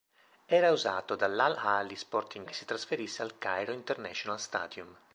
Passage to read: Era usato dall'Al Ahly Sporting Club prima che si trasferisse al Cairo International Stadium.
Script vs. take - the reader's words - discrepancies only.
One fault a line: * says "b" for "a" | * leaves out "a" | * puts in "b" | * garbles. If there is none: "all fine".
* leaves out "Club prima"